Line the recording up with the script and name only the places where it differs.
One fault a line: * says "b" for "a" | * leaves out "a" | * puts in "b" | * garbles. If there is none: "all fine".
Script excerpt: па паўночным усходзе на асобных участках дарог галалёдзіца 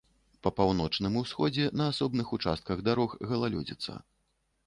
all fine